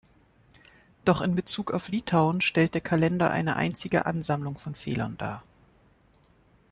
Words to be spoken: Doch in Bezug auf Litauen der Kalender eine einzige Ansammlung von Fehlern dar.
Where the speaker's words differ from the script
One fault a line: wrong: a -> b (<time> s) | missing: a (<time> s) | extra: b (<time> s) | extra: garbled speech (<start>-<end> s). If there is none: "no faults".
extra: stellt (2.4 s)